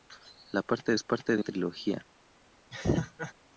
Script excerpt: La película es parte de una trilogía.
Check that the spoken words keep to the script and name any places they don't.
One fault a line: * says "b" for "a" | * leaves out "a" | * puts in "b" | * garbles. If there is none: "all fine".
* says "parte" for "película"
* leaves out "una"